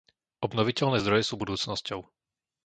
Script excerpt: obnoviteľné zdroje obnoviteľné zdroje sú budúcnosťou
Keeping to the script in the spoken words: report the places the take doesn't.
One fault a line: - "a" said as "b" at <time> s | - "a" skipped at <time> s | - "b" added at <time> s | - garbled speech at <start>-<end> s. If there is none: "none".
- "obnoviteľné zdroje" skipped at 1.3 s